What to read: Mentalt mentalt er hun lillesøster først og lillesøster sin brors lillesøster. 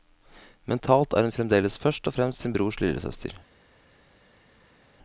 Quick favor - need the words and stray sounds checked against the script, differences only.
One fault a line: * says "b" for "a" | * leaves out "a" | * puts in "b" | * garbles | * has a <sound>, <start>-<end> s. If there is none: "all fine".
* leaves out "mentalt"
* says "fremdeles" for "lillesøster"
* says "fremst" for "lillesøster"